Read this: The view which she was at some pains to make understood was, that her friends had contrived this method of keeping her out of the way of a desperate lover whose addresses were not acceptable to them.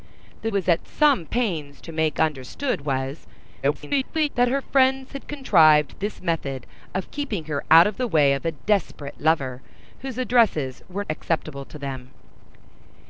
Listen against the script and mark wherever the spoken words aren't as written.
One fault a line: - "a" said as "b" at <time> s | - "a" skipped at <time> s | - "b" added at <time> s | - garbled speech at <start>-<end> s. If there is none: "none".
- "view which she" skipped at 0.5 s
- garbled speech at 3.6-4.3 s
- "not" skipped at 11.0 s